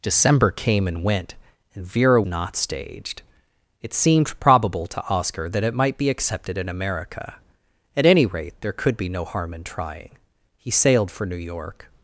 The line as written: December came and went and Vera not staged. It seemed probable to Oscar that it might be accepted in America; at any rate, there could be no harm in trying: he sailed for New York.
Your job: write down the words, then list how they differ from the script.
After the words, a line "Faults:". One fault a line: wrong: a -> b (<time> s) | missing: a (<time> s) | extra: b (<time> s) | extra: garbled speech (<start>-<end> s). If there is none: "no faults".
December came and went and Vera not staged. It seemed probable to Oscar that it might be accepted in America; at any rate, there could be no harm in trying: he sailed for New York.
Faults:
no faults